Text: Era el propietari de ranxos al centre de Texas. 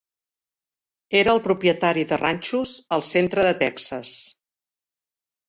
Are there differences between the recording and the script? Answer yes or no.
no